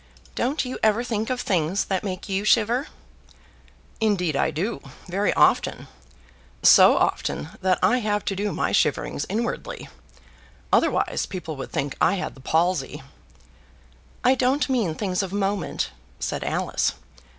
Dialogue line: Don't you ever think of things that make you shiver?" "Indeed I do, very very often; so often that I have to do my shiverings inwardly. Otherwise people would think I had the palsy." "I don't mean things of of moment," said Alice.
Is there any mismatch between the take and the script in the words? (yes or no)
yes